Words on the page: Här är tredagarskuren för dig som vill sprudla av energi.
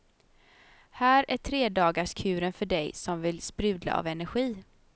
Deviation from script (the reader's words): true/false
false